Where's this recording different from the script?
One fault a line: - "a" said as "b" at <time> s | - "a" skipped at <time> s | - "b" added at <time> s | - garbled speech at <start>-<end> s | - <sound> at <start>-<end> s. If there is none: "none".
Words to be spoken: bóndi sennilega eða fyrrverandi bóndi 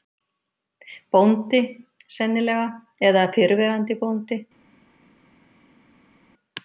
none